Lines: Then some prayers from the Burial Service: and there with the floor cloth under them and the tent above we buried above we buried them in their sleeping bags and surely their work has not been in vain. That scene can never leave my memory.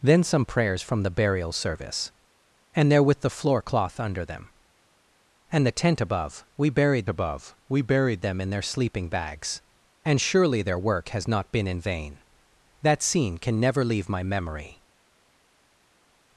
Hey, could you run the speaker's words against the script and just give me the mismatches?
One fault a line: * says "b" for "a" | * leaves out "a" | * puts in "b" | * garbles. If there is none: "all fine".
all fine